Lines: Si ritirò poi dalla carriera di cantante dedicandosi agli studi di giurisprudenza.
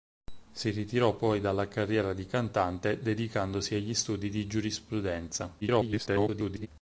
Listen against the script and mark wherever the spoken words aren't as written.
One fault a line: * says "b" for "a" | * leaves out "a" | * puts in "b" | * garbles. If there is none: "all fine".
* garbles